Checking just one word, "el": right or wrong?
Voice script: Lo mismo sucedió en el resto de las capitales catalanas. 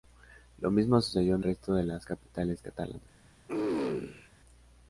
wrong